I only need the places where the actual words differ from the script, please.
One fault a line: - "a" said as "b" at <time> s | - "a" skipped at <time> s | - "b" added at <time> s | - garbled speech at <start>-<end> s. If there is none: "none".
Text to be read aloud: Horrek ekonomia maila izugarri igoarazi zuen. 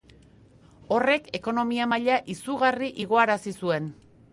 none